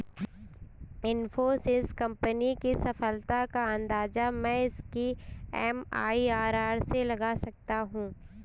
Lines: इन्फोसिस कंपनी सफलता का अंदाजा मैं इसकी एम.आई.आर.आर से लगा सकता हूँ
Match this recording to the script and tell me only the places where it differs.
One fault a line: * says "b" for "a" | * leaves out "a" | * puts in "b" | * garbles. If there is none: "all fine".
* puts in "की"